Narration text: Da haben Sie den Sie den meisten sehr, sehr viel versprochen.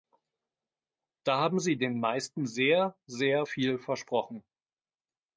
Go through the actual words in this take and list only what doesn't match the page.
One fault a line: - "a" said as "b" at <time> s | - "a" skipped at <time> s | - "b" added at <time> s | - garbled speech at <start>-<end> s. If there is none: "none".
- "Sie den" skipped at 2.0 s